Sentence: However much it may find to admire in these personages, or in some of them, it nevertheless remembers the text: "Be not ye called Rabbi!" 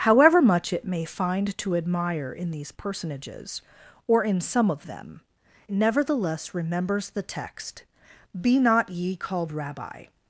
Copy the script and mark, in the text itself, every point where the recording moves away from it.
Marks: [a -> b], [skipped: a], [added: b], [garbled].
However much it may find to admire in these personages, or in some of them, [skipped: it] nevertheless remembers the text: "Be not ye called Rabbi!"